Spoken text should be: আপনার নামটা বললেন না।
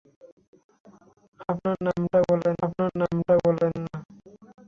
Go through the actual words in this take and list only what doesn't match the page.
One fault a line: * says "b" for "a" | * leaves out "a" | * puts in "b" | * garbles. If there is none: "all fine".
* puts in "আপনার নামটা বললেন"